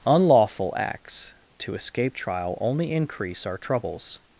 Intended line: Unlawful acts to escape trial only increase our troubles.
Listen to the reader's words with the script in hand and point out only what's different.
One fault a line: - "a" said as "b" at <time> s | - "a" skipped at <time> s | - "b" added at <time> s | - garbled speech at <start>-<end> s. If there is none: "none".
none